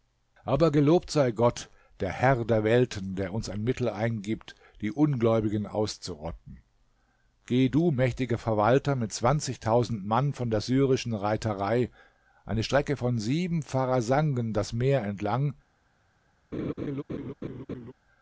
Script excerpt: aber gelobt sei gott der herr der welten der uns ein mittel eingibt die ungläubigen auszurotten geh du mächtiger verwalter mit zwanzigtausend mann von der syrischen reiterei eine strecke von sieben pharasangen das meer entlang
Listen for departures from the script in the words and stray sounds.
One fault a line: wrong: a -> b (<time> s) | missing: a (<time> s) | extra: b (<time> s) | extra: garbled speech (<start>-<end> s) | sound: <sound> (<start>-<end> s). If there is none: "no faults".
sound: laugh (16.5-17.9 s)